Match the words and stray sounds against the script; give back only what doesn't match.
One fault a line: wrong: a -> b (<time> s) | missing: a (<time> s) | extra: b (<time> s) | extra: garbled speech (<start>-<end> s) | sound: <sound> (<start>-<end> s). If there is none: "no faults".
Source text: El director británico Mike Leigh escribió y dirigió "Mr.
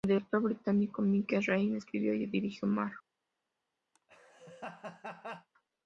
sound: laugh (3.9-5.5 s)